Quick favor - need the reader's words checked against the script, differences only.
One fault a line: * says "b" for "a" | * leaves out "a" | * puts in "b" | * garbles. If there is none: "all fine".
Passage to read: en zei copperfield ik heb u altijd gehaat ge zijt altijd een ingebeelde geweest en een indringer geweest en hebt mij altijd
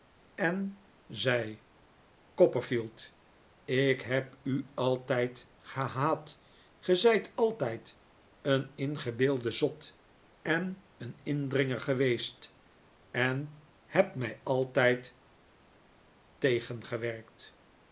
* says "zot" for "geweest"